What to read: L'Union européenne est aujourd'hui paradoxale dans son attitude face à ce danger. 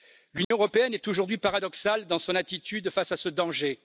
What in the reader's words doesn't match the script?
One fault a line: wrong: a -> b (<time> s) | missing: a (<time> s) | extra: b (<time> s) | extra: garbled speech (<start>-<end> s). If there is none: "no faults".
no faults